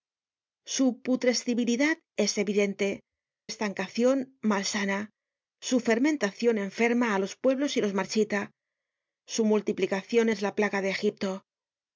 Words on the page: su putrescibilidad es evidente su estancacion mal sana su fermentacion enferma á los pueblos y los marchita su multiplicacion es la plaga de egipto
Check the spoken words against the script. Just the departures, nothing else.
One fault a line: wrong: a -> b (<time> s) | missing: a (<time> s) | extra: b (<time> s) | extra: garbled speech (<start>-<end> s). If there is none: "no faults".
missing: su (3.0 s)